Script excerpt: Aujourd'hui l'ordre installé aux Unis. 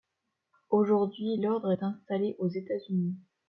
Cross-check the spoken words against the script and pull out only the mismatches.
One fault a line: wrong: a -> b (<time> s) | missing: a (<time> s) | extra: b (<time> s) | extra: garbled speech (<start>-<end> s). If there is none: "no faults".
extra: est (1.7 s)
extra: États (2.5 s)